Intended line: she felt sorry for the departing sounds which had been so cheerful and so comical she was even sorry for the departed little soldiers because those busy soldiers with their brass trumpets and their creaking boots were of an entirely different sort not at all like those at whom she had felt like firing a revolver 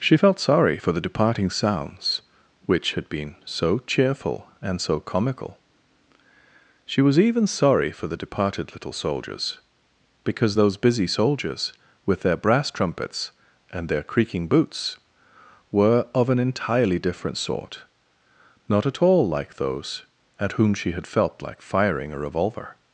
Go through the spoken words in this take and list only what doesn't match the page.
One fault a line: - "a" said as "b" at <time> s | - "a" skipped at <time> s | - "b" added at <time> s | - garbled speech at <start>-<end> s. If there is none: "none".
none